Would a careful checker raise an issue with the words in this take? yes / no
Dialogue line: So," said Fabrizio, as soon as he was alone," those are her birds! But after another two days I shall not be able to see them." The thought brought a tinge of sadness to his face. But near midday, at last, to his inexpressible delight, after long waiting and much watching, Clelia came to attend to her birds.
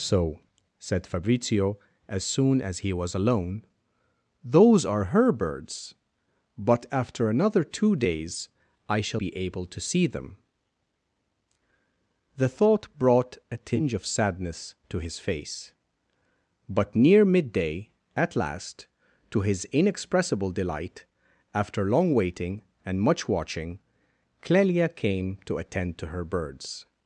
yes